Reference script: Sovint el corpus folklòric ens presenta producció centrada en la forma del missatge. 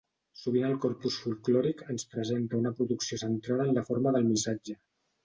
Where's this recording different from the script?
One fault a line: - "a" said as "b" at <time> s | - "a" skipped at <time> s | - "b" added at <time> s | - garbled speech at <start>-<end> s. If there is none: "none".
- "una" added at 2.6 s